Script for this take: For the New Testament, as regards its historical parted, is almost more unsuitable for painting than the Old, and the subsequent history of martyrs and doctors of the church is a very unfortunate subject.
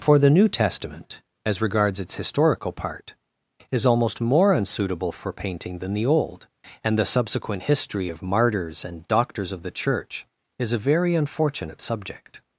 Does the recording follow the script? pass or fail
fail